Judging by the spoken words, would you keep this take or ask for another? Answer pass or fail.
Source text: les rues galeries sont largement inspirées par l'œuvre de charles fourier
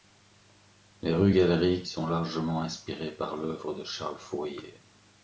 pass